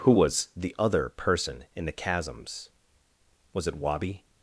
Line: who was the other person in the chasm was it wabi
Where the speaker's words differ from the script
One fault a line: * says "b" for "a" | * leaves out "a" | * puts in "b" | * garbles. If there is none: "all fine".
* says "chasms" for "chasm"